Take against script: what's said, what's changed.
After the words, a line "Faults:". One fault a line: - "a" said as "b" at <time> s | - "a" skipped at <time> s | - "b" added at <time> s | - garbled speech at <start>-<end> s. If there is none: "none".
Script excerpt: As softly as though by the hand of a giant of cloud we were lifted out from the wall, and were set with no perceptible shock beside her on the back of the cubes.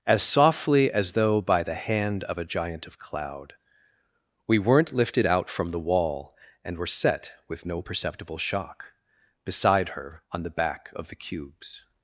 As softly as though by the hand of a giant of cloud we weren't lifted out from the wall, and were set with no perceptible shock beside her on the back of the cubes.
Faults:
- "were" said as "weren't" at 4.6 s